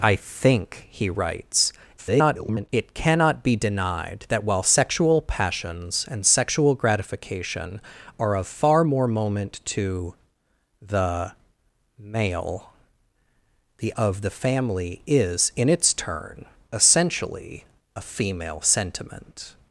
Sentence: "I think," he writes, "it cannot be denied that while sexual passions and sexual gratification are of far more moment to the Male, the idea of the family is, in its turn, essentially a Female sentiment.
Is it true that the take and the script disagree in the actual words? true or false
true